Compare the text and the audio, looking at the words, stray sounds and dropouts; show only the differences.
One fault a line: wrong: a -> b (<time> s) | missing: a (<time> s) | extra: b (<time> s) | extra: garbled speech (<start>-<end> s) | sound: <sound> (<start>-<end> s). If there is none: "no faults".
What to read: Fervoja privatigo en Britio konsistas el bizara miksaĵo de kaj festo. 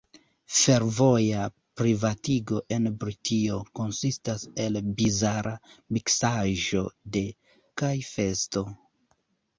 no faults